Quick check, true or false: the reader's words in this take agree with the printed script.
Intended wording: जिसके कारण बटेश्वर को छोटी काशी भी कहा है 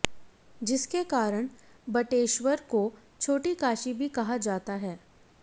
false